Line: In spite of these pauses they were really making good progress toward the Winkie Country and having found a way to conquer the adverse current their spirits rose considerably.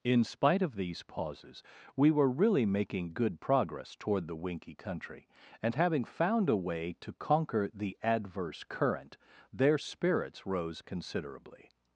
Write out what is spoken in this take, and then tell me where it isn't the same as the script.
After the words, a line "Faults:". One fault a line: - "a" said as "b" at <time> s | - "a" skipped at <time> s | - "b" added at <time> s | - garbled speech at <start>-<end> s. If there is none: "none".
In spite of these pauses we were really making good progress toward the Winkie Country and having found a way to conquer the adverse current their spirits rose considerably.
Faults:
- "they" said as "we" at 1.9 s